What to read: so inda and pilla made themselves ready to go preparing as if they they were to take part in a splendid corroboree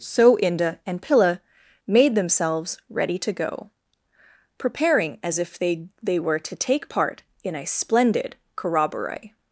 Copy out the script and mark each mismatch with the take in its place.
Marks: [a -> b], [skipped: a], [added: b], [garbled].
so inda and pilla made themselves ready to go preparing as if they they were to take part in a splendid corroboree